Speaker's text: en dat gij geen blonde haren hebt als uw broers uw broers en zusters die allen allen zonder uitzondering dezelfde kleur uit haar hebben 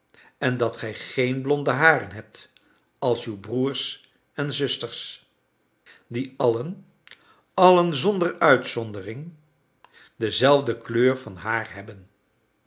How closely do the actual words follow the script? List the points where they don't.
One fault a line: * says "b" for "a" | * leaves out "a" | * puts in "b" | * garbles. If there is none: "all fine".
* leaves out "uw broers"
* says "van" for "uit"